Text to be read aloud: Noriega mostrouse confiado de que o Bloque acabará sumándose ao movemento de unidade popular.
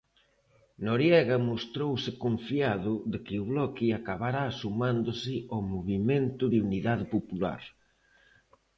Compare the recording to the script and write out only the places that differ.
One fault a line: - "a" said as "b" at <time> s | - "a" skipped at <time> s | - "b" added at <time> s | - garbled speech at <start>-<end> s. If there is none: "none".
none